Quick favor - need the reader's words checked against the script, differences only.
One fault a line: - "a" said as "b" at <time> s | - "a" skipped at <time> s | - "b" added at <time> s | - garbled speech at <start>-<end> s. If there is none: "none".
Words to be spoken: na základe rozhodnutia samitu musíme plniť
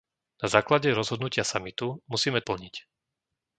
none